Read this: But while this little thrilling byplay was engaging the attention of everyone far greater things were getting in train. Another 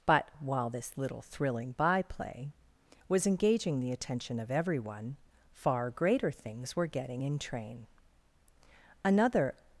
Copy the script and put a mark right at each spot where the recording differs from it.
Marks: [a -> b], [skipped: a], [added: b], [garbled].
But while this little thrilling byplay was engaging the attention of everyone far greater things were getting in train. Another